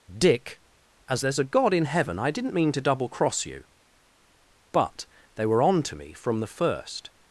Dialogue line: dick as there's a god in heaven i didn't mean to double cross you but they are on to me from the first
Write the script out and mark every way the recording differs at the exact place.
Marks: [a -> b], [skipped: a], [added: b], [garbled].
dick as there's a god in heaven i didn't mean to double cross you but they [are -> were] on to me from the first